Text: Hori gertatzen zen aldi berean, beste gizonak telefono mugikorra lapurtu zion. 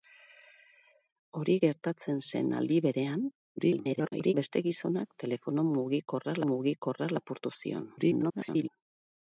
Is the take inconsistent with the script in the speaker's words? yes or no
yes